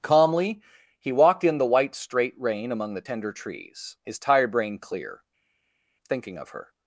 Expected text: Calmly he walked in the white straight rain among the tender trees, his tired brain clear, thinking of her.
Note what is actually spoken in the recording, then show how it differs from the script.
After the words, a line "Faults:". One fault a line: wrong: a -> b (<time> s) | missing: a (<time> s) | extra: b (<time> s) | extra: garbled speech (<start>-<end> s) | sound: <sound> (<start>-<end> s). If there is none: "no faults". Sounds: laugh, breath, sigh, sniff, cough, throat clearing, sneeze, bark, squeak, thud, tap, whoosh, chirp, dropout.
Calmly he walked in the white straight rain among the tender trees, his tired brain clear, thinking of her.
Faults:
no faults